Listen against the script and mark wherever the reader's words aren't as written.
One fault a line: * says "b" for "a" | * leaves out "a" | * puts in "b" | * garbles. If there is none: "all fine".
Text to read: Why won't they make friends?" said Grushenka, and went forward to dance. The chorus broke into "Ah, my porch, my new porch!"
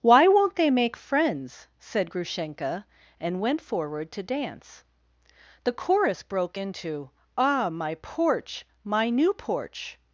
all fine